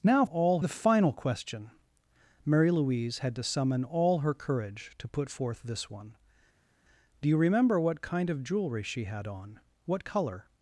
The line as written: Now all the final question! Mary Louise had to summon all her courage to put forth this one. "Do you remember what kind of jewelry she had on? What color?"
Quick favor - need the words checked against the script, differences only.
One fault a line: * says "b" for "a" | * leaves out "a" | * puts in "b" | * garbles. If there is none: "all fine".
all fine